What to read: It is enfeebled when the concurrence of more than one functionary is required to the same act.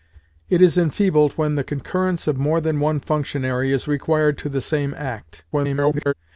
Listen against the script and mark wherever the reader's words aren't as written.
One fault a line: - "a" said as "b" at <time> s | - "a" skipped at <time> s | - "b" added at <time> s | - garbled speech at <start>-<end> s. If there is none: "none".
- garbled speech at 5.5-6.1 s